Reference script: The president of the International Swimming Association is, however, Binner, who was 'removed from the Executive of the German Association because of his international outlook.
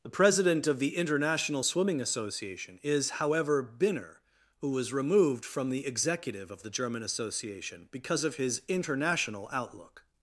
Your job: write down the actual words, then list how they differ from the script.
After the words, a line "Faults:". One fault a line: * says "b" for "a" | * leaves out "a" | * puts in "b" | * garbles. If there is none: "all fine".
The president of the International Swimming Association is, however, Binner, who was 'removed from the Executive of the German Association because of his international outlook.
Faults:
all fine